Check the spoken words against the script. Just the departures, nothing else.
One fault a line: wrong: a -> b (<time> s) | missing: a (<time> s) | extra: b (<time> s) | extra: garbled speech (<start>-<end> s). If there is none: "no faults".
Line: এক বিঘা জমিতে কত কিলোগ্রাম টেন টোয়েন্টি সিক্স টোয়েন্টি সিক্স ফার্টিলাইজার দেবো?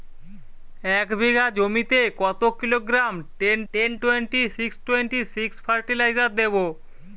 extra: টেন (3.7 s)